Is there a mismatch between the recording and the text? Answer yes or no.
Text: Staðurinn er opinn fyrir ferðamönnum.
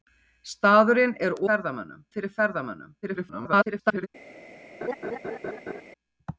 yes